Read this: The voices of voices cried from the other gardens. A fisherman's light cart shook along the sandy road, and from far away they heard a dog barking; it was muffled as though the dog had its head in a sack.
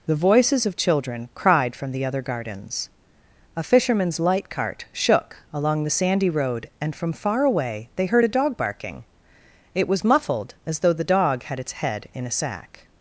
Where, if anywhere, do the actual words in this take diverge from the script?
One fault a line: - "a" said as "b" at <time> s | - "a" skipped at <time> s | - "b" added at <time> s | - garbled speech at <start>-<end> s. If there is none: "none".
- "voices" said as "children" at 0.8 s